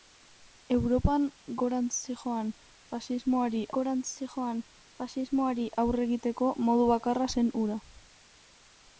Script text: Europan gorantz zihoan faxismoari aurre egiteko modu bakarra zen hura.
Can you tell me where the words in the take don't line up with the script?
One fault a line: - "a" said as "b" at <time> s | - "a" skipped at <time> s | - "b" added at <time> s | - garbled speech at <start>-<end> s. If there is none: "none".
- "gorantz zihoan faxismoari" added at 3.8 s